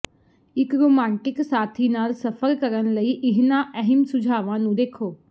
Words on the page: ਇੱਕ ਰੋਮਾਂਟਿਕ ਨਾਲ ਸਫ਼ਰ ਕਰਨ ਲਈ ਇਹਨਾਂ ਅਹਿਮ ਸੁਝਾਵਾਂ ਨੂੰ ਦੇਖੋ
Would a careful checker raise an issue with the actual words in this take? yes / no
yes